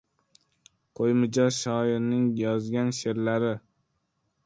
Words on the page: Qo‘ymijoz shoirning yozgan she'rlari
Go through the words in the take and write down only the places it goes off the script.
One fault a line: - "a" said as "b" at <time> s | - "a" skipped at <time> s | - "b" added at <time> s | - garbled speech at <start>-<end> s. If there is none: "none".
none